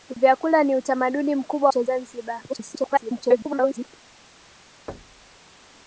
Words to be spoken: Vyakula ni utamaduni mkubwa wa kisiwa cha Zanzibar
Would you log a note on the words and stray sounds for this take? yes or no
yes